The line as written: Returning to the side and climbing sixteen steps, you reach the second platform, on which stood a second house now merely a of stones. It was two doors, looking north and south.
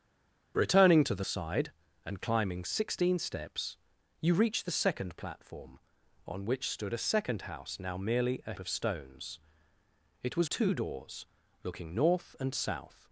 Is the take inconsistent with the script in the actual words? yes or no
no